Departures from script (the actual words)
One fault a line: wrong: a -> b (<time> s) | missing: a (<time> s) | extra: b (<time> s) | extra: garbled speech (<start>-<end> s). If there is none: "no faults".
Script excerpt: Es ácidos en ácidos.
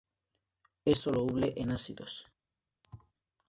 wrong: ácidos -> soluble (1.0 s)